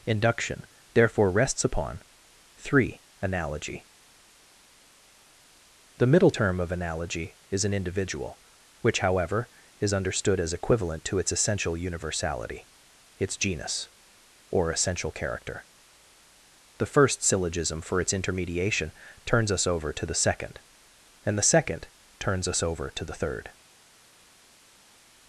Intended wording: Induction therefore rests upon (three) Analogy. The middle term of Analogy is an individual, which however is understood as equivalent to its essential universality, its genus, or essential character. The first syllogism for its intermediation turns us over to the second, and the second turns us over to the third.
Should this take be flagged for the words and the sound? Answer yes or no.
no